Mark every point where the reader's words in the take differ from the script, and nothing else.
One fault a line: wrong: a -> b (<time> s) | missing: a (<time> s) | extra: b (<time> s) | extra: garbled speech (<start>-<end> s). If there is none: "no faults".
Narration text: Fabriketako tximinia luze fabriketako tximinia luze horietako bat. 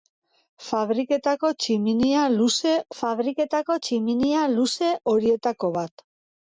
no faults